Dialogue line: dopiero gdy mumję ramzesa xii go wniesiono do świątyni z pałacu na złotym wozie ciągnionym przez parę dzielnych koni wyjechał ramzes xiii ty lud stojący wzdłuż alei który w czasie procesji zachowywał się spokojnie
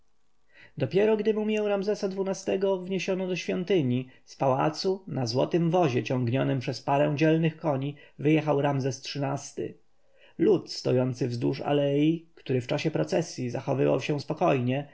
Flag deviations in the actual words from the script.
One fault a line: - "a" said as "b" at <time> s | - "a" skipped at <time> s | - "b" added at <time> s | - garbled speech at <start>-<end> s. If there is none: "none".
none